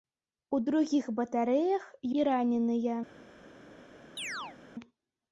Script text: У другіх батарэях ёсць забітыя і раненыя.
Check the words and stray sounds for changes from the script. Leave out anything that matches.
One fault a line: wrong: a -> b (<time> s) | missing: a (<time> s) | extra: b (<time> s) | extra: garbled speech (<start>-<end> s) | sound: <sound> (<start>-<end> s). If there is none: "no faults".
missing: ёсць забітыя (1.8 s)
sound: chirp (4.2-4.6 s)